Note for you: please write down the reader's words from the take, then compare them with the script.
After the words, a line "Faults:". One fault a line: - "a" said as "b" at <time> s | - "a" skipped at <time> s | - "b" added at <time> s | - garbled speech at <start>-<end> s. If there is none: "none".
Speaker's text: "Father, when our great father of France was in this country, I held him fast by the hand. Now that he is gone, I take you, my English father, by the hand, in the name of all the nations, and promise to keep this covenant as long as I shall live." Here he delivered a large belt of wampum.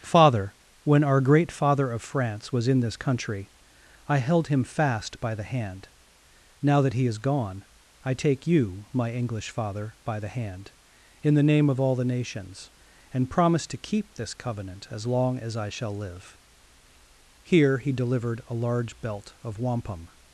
"Father, when our great father of France was in this country, I held him fast by the hand. Now that he is gone, I take you, my English father, by the hand, in the name of all the nations, and promise to keep this covenant as long as I shall live." Here he delivered a large belt of wampum.
Faults:
none